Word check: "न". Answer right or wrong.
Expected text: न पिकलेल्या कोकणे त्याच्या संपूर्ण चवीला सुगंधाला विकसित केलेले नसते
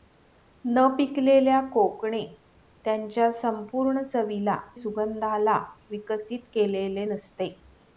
right